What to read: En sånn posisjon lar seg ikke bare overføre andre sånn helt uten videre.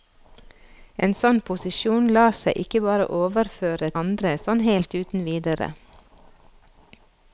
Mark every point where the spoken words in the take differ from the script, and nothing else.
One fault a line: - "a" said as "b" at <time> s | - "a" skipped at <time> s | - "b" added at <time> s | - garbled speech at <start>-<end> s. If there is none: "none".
none